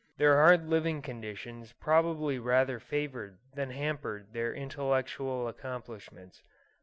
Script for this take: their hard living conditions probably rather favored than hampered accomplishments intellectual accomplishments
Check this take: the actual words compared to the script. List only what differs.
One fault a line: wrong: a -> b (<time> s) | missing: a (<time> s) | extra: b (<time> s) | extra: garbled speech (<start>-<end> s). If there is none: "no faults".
wrong: accomplishments -> their (4.3 s)